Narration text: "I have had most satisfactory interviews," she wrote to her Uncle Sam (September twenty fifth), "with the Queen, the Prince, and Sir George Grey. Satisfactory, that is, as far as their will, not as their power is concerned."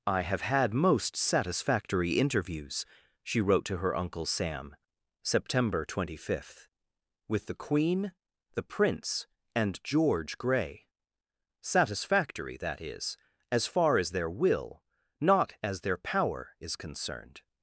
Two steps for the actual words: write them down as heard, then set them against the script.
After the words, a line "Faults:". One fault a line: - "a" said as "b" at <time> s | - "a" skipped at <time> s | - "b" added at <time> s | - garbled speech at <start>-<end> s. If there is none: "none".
"I have had most satisfactory interviews," she wrote to her Uncle Sam (September twenty fifth), "with the Queen, the Prince, and George Grey. Satisfactory, that is, as far as their will, not as their power is concerned."
Faults:
- "Sir" skipped at 9.8 s